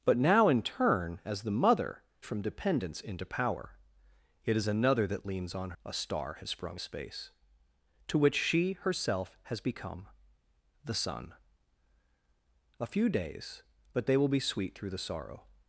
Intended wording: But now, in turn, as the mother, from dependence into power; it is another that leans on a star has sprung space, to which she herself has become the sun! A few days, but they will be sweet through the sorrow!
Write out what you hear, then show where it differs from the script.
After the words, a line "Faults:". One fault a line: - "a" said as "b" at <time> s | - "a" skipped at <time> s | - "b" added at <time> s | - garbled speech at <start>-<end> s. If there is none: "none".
But now, in turn, as the mother, from dependence into power; it is another that leans on a star has sprung space, to which she herself has become the sun! A few days, but they will be sweet through the sorrow!
Faults:
none